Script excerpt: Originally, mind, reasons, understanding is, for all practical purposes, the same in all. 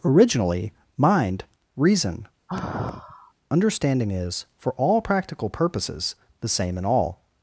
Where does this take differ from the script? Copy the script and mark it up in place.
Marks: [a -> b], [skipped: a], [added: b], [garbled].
Originally, mind, [reasons, -> reason] understanding is, for all practical purposes, the same in all.